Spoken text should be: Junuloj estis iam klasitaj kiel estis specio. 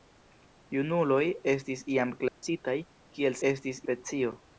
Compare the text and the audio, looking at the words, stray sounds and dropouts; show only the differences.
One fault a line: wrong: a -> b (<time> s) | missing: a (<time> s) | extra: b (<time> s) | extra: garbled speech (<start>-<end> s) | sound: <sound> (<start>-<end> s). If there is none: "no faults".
sound: dropout (2.3-2.4 s)